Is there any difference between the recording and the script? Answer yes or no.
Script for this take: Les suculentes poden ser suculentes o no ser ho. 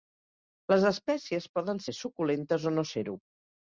yes